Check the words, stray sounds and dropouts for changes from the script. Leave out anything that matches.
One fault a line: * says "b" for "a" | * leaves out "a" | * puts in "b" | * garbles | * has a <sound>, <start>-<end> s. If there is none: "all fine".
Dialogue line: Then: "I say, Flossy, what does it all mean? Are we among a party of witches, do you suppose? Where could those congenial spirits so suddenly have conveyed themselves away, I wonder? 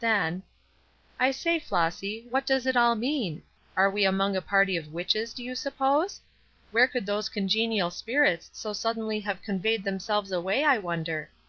all fine